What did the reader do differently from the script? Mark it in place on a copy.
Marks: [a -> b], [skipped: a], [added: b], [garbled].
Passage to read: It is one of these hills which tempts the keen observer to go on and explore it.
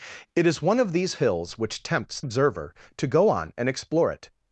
It is one of these hills which tempts [skipped: the keen] observer to go on and explore it.